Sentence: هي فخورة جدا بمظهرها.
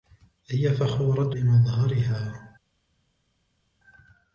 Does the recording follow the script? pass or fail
fail